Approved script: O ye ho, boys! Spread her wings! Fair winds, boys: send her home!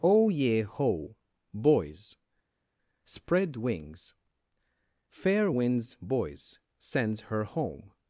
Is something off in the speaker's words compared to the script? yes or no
yes